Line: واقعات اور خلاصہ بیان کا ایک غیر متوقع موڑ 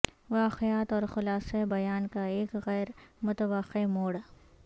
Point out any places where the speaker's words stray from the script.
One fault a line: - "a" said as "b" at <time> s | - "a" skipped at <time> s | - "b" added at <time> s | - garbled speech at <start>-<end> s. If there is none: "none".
none